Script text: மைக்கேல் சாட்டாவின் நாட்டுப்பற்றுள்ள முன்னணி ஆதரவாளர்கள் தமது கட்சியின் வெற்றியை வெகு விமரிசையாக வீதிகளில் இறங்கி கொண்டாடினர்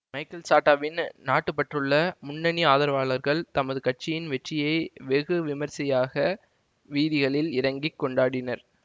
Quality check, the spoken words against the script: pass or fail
pass